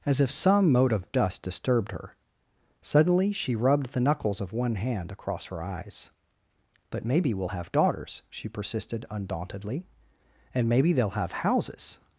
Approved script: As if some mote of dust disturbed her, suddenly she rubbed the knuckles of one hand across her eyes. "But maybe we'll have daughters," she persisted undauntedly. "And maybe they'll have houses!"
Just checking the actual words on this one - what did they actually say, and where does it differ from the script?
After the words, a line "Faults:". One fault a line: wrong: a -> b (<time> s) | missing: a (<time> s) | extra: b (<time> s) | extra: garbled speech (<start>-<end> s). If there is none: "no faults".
As if some mote of dust disturbed her, suddenly she rubbed the knuckles of one hand across her eyes. "But maybe we'll have daughters," she persisted undauntedly. "And maybe they'll have houses!"
Faults:
no faults